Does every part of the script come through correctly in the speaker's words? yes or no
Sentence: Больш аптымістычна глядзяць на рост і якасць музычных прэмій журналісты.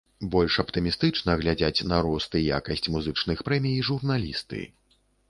yes